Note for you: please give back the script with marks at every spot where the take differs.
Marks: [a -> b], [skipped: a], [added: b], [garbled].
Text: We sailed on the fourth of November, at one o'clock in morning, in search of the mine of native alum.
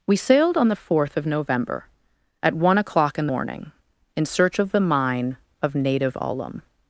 We sailed on the fourth of November, at one o'clock in morning, in search of the mine of native alum.